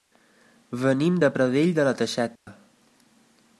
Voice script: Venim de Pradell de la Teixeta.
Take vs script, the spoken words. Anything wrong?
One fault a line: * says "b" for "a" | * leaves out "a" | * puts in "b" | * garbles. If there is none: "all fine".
all fine